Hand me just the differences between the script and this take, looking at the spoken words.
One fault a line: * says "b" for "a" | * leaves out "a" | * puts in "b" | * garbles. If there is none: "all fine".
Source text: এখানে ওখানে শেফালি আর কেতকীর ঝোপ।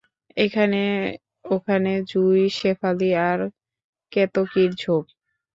* puts in "জুঁই"